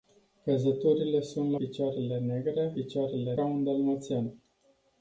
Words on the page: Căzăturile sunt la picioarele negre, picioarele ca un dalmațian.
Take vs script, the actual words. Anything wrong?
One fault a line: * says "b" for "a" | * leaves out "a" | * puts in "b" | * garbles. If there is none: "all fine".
all fine